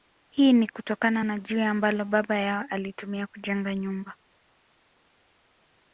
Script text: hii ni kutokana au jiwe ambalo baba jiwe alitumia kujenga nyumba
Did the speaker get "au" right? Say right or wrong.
wrong